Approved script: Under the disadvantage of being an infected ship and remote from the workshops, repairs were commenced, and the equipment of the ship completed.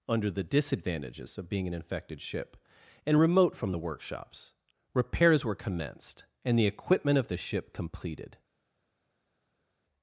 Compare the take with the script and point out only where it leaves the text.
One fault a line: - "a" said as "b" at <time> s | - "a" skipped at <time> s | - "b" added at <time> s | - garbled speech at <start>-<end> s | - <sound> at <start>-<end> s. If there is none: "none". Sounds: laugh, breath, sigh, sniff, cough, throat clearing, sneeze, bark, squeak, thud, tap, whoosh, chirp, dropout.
- "disadvantage" said as "disadvantages" at 0.4 s